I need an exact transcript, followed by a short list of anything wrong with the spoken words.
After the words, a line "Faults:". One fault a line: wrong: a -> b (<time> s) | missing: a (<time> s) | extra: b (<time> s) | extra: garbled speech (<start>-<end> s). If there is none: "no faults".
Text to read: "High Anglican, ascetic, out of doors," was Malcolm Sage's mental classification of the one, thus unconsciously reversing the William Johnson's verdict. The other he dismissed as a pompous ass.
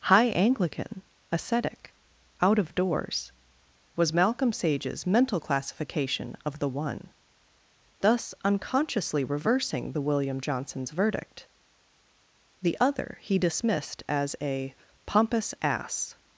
"High Anglican, ascetic, out of doors," was Malcolm Sage's mental classification of the one, thus unconsciously reversing the William Johnson's verdict. The other he dismissed as a pompous ass.
Faults:
no faults